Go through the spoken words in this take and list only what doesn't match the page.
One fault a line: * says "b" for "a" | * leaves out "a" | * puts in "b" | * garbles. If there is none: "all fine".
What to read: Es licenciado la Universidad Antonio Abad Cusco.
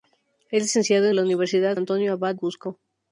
all fine